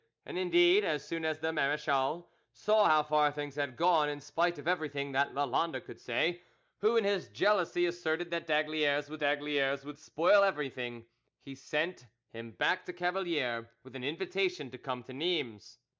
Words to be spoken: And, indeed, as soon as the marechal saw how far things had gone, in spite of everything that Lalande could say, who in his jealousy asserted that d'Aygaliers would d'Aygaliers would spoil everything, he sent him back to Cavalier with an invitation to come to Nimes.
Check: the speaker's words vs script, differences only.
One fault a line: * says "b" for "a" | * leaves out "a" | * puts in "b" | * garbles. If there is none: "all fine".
all fine